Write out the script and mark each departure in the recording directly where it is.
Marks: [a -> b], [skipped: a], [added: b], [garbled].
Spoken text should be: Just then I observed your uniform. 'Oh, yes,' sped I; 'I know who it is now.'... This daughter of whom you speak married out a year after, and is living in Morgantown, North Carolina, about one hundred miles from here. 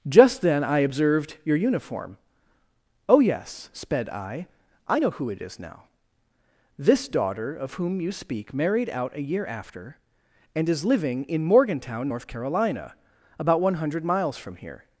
Just then I observed your uniform. 'Oh, yes,' sped I; 'I know who it is now.'... This daughter of whom you speak married out a year after, and is living in Morgantown, North Carolina, about one hundred miles from here.